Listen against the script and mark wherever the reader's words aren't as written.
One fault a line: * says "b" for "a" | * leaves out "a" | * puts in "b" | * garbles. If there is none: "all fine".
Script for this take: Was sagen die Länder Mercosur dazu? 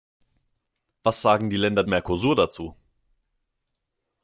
all fine